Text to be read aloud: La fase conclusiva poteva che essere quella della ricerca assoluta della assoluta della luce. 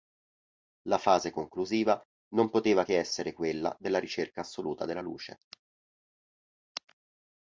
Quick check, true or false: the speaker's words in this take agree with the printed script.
false